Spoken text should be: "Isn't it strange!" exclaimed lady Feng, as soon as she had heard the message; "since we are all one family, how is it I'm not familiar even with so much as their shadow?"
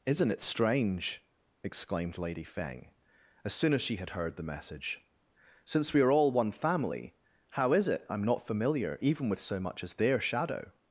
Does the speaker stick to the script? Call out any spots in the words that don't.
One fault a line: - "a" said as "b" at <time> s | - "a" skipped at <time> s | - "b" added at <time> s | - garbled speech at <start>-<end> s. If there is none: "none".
none